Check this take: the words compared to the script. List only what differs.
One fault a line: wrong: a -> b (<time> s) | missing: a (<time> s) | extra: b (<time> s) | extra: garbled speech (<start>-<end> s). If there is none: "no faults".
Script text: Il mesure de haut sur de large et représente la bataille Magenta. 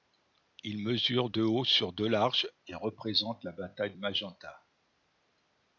no faults